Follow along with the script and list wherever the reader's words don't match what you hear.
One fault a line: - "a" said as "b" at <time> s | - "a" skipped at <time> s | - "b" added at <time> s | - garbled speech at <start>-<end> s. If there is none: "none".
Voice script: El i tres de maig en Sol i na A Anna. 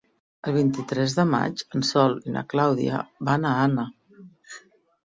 - "vint" added at 0.6 s
- "Clàudia van" added at 2.5 s